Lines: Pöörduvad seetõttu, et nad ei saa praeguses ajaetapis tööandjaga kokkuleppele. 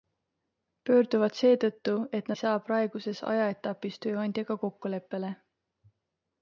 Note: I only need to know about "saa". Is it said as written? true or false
true